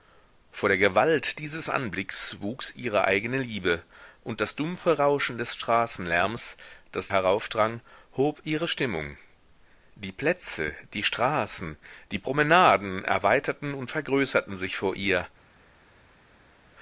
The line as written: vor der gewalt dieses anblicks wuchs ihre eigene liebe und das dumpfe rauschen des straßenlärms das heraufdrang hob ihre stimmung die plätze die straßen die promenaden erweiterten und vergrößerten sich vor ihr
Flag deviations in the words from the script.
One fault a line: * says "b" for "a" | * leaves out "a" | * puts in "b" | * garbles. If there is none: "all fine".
all fine